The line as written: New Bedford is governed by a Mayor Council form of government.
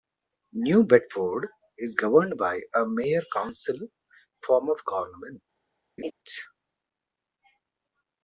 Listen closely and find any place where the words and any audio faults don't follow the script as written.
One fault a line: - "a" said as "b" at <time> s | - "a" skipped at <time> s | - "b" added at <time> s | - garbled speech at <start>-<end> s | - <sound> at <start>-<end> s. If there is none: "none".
- laugh at 6.0-6.1 s